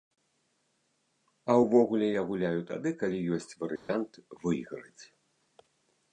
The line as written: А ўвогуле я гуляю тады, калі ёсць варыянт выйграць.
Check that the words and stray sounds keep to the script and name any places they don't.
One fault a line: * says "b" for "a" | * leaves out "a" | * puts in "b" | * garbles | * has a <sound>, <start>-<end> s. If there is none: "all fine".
* has a dropout, 3.8-3.9 s